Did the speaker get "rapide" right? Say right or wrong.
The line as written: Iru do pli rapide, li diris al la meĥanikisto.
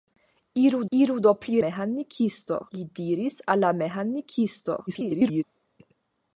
wrong